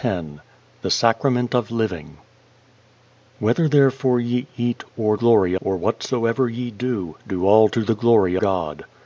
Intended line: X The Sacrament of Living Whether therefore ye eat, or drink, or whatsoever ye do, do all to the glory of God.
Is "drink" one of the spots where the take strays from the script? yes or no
yes